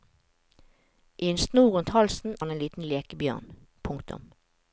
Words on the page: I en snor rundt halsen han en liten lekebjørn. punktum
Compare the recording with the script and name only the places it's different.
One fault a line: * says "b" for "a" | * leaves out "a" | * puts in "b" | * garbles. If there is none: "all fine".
all fine